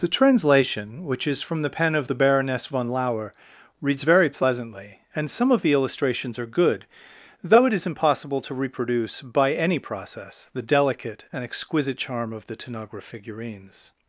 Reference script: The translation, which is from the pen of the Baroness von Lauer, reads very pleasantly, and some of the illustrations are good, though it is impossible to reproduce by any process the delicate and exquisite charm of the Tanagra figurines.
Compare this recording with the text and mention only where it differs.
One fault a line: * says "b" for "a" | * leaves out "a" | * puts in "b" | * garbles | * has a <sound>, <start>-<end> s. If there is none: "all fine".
all fine